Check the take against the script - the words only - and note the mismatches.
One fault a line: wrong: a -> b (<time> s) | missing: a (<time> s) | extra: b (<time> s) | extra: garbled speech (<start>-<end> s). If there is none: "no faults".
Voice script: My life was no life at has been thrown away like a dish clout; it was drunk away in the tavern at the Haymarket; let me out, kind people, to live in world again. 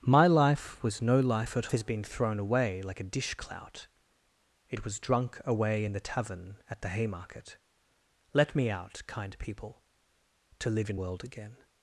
no faults